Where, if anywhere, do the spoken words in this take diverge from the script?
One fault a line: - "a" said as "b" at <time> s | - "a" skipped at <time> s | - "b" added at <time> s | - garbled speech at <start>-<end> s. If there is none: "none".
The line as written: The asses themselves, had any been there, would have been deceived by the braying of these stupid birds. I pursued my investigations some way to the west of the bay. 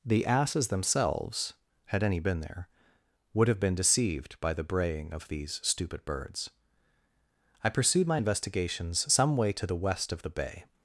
none